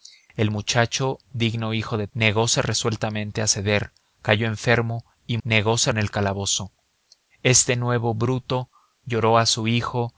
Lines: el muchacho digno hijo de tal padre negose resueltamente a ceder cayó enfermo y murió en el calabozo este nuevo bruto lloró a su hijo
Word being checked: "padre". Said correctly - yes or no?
no